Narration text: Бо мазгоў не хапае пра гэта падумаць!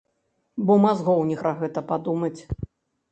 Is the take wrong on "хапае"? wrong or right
wrong